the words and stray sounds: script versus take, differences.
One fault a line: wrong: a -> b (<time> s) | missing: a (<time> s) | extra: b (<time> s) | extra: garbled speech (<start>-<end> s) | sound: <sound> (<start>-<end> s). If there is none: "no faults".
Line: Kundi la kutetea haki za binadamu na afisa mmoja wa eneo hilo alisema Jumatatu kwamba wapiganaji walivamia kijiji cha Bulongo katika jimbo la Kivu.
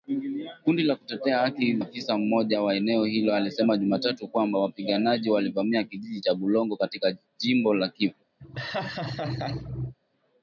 missing: za binadamu na (1.8 s)
sound: laugh (8.4-9.9 s)